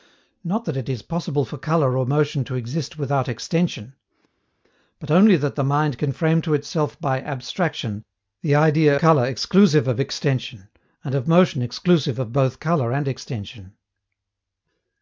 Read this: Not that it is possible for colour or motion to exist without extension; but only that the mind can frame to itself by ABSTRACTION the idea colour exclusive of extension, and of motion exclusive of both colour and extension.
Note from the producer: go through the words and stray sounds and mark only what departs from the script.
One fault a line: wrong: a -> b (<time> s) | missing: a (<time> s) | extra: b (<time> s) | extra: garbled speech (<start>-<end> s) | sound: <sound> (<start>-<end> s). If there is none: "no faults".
no faults